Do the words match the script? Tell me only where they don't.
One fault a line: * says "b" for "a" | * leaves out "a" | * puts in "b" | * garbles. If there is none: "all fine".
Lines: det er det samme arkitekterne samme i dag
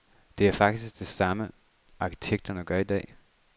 * puts in "faktisk"
* says "gør" for "samme"